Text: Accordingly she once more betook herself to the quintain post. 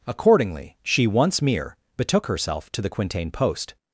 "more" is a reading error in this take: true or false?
true